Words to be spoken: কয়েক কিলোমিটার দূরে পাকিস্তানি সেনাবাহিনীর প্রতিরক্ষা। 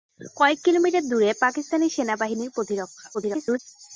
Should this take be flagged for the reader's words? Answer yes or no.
yes